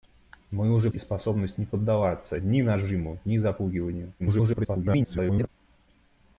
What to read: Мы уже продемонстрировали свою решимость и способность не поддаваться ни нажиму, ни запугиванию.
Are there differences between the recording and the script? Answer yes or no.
yes